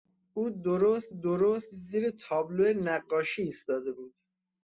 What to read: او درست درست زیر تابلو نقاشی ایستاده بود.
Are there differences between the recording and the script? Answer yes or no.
no